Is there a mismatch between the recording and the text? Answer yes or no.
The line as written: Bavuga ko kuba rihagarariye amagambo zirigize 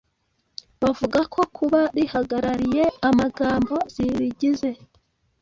no